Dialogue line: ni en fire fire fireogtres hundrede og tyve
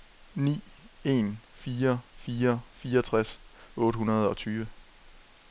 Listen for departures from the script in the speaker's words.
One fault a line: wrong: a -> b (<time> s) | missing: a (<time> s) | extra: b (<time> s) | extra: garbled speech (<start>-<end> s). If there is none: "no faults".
extra: otte (3.8 s)